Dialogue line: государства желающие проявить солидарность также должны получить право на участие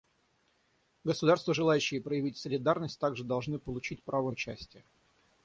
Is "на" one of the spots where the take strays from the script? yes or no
yes